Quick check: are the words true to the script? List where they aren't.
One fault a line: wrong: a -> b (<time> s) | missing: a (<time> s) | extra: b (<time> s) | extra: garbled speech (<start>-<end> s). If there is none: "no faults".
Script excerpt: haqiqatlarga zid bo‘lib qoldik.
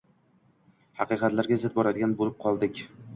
extra: boradigan (1.8 s)